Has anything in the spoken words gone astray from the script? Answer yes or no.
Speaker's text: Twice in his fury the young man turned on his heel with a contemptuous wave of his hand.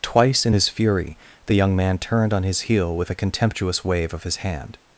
no